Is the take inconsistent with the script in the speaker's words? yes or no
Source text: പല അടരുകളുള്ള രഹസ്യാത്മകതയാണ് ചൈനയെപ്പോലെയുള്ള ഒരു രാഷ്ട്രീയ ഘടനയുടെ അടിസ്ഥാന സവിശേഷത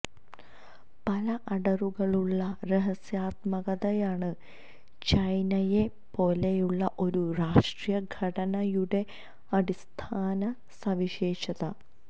no